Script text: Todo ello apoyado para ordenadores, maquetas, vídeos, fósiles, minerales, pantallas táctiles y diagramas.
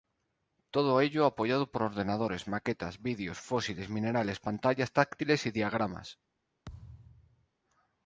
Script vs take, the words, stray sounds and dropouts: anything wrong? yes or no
yes